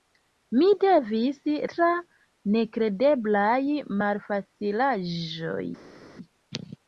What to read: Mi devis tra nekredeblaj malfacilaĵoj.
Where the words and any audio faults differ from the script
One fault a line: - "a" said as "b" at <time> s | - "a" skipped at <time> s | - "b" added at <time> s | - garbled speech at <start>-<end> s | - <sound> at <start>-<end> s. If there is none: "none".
none